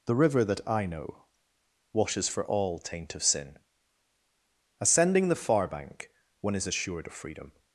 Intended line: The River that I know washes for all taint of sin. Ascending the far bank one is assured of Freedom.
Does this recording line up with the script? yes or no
yes